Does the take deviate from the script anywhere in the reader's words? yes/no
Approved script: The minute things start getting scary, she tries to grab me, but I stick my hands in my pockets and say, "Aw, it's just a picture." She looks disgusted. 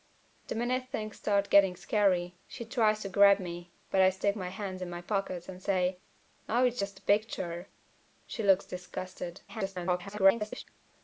yes